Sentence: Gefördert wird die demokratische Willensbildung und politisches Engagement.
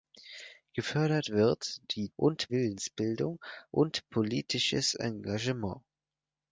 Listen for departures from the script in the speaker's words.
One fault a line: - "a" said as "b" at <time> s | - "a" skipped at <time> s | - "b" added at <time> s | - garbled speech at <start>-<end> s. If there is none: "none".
- "demokratische" said as "und" at 2.1 s